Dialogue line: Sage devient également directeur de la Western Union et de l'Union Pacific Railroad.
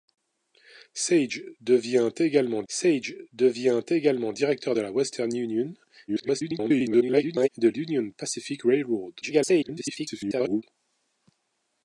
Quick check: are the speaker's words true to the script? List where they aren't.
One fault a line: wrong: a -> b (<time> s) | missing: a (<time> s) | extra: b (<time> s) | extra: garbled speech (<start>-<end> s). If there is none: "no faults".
extra: sage devient également (2.7 s)
extra: garbled speech (6.1-7.5 s)
extra: garbled speech (9.2-10.6 s)